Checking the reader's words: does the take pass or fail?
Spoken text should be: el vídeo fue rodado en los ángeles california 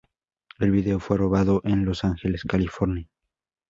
pass